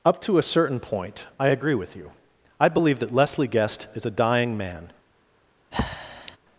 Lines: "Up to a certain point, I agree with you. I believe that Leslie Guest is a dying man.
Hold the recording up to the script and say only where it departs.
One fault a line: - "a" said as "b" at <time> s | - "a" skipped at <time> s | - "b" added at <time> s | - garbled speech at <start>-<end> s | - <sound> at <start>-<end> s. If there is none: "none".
- breath at 5.7-6.4 s